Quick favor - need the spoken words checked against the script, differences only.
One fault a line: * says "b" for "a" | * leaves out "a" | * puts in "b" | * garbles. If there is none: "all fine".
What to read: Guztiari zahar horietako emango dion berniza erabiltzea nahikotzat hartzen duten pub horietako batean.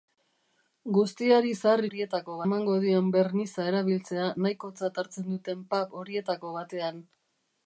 all fine